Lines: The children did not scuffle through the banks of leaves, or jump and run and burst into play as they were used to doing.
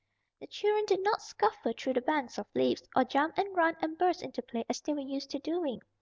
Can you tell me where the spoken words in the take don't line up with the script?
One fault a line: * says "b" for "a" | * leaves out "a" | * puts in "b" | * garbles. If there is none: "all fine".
all fine